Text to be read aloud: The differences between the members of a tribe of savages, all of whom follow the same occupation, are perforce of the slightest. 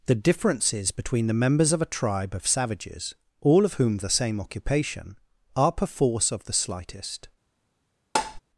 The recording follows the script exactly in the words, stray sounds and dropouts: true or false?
false